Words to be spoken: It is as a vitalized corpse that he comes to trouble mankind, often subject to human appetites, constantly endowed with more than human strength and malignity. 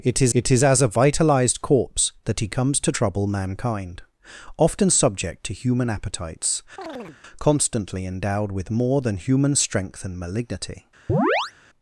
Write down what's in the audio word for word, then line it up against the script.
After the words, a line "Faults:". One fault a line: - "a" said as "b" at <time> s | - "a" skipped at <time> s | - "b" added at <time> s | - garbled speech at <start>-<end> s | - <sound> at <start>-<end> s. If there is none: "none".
It is it is as a vitalized corpse that he comes to trouble mankind, often subject to human appetites, constantly endowed with more than human strength and malignity.
Faults:
- "it is" added at 0.3 s
- chirp at 6.8-7.2 s
- chirp at 11.1-11.5 s